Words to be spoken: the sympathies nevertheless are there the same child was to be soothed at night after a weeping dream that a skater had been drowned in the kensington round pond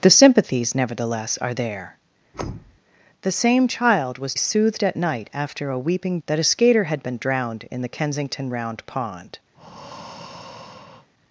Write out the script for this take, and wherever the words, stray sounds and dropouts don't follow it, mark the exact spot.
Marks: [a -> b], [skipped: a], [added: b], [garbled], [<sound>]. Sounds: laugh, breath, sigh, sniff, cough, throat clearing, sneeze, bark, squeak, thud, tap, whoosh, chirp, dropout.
the sympathies nevertheless are there [thud] the same child was [skipped: to be] soothed at night after a weeping [skipped: dream] that a skater had been drowned in the kensington round pond [breath]